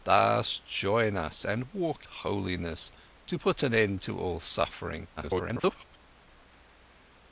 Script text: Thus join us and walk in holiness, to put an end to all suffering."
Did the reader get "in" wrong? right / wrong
wrong